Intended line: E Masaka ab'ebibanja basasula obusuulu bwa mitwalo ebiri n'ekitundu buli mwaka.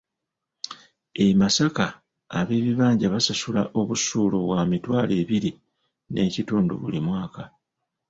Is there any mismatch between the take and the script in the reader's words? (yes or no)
no